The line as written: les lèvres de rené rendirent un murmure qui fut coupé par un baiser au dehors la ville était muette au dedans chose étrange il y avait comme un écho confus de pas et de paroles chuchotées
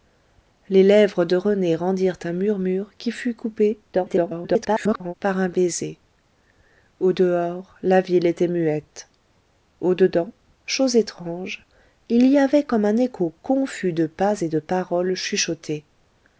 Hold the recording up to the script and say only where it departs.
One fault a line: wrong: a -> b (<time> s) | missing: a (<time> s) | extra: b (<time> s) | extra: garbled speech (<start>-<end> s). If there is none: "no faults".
extra: garbled speech (3.9-5.1 s)